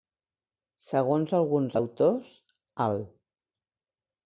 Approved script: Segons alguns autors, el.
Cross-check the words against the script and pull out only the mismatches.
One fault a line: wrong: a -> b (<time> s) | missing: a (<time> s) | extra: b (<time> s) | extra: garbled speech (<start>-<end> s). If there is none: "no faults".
no faults